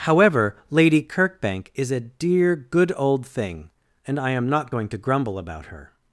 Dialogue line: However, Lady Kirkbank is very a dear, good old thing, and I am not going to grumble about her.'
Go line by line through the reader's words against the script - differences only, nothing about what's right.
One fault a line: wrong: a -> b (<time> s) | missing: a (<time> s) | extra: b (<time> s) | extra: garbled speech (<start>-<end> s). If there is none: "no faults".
missing: very (1.9 s)